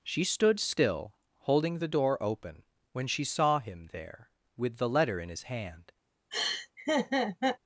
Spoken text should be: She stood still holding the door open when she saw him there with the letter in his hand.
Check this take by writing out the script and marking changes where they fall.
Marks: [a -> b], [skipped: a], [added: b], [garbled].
She stood still holding the door open when she saw him there with the letter in his hand.